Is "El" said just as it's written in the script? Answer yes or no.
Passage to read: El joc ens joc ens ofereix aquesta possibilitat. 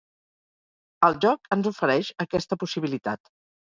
yes